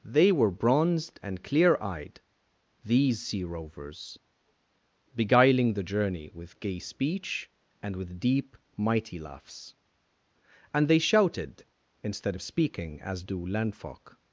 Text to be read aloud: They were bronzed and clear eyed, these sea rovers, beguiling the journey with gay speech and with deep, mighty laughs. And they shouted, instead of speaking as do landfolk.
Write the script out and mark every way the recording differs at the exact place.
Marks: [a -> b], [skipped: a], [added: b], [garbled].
They were bronzed and clear eyed, these sea rovers, beguiling the journey with gay speech and with deep, mighty laughs. And they shouted, instead of speaking as do landfolk.